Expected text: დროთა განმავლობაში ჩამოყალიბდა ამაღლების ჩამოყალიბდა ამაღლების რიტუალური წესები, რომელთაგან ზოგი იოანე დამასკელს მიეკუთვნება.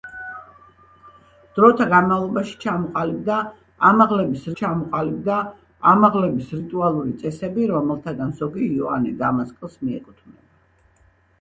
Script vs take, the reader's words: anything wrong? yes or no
no